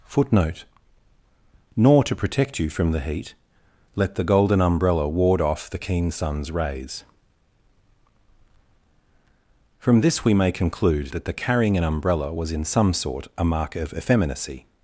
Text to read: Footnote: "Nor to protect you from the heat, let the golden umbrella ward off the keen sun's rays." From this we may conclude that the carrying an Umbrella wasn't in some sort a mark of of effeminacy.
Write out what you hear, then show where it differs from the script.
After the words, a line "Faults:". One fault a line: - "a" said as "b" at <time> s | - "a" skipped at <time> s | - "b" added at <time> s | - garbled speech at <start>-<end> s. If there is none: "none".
Footnote: "Nor to protect you from the heat, let the golden umbrella ward off the keen sun's rays." From this we may conclude that the carrying an Umbrella was in some sort a mark of effeminacy.
Faults:
- "wasn't" said as "was" at 12.3 s
- "of" skipped at 13.9 s